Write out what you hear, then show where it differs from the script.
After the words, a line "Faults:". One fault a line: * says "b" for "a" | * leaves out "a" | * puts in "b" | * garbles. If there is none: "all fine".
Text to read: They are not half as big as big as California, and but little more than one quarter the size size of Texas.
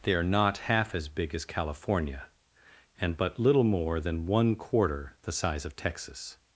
They are not half as big as California, and but little more than one quarter the size of Texas.
Faults:
* leaves out "big as"
* leaves out "size"